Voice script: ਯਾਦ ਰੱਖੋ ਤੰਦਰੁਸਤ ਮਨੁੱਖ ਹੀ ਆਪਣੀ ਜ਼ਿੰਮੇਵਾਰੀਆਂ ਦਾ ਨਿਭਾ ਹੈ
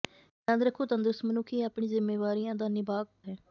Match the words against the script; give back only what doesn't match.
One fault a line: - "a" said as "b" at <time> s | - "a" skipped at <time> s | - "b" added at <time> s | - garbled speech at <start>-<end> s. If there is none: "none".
none